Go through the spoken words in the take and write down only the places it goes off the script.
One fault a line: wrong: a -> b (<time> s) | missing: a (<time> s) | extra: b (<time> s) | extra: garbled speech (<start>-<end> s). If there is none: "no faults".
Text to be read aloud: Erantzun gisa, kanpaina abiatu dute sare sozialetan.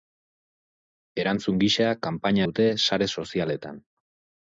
missing: abiatu (2.5 s)